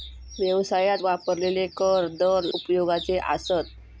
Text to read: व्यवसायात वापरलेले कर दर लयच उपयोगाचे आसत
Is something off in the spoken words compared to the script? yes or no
yes